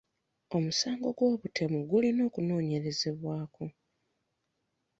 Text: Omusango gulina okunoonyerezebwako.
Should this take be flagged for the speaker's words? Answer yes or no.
yes